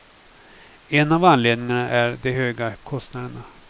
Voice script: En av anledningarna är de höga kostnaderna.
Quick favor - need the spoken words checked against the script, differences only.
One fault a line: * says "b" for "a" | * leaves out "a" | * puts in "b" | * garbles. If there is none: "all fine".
all fine